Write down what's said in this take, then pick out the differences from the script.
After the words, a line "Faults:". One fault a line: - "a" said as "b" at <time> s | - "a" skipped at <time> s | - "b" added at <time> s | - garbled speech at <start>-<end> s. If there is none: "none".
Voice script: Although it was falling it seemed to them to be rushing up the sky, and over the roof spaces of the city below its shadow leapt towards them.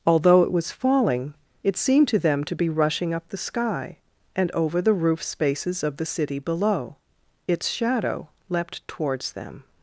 Although it was falling it seemed to them to be rushing up the sky, and over the roof spaces of the city below its shadow leapt towards them.
Faults:
none